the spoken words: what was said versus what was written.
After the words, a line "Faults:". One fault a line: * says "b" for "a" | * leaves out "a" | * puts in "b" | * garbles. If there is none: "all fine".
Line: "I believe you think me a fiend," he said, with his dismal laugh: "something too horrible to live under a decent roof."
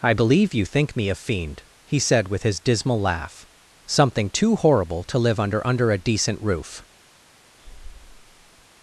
"I believe you think me a fiend," he said, with his dismal laugh: "something too horrible to live under under a decent roof."
Faults:
* puts in "under"